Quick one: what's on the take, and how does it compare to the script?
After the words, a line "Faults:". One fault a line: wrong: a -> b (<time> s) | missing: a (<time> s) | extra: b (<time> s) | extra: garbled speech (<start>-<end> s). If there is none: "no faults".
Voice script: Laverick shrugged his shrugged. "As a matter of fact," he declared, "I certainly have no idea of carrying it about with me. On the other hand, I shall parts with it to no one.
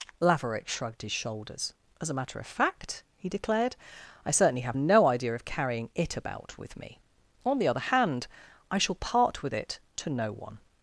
Laverick shrugged his shoulders. "As a matter of fact," he declared, "I certainly have no idea of carrying it about with me. On the other hand, I shall part with it to no one.
Faults:
wrong: shrugged -> shoulders (1.1 s)
wrong: parts -> part (8.9 s)